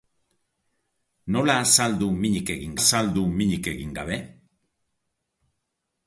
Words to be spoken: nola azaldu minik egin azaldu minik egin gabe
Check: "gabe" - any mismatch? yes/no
no